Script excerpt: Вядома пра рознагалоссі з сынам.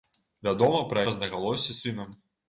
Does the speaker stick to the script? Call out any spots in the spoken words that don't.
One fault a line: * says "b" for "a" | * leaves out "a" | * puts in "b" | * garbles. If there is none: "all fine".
all fine